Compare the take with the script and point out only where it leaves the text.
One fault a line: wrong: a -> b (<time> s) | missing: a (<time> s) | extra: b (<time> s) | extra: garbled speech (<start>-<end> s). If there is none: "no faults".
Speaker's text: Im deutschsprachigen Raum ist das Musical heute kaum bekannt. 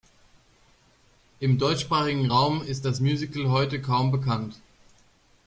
no faults